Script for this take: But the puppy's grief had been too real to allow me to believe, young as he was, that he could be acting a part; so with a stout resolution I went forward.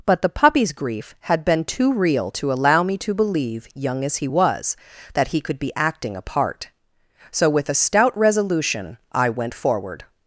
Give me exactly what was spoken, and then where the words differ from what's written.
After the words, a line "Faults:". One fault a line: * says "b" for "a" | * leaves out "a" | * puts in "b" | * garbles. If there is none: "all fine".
But the puppy's grief had been too real to allow me to believe, young as he was, that he could be acting a part; so with a stout resolution I went forward.
Faults:
all fine